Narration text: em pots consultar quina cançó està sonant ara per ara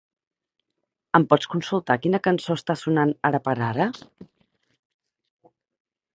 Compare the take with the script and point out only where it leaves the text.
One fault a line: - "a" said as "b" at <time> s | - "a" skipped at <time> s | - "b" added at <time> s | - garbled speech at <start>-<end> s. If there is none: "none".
none